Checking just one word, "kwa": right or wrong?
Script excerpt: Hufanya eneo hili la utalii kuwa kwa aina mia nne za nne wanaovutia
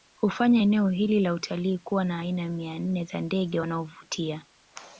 wrong